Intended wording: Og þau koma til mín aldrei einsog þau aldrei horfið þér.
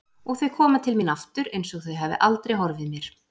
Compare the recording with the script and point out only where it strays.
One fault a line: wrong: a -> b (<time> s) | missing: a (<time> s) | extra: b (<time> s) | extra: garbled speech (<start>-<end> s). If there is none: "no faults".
wrong: aldrei -> aftur (1.2 s)
extra: hafi (2.0 s)
wrong: þér -> mér (3.0 s)